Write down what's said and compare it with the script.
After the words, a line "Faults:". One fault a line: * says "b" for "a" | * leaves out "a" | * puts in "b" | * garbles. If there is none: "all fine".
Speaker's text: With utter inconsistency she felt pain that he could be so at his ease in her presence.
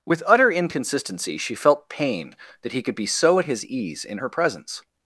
With utter inconsistency she felt pain that he could be so at his ease in her presence.
Faults:
all fine